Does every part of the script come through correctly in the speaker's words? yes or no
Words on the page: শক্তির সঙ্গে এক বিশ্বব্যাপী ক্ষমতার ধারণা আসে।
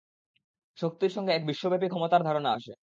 yes